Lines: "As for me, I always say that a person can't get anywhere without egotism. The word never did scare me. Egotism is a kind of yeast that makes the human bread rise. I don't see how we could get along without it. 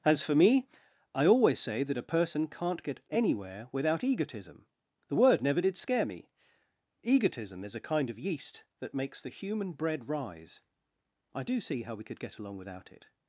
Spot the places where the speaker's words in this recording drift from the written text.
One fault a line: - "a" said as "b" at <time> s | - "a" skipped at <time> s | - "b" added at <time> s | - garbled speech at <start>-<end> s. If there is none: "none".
- "don't" said as "do" at 11.4 s